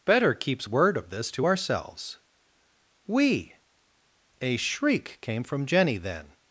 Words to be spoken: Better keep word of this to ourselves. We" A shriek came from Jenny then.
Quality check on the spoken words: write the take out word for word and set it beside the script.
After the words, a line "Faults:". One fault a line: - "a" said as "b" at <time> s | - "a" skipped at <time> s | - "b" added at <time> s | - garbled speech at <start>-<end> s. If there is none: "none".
Better keeps word of this to ourselves. We" A shriek came from Jenny then.
Faults:
- "keep" said as "keeps" at 0.3 s